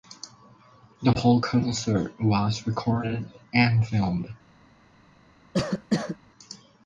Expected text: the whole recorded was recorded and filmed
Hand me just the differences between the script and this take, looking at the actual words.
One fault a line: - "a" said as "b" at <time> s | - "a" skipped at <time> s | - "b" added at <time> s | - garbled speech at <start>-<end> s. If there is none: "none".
- "recorded" said as "concert" at 1.4 s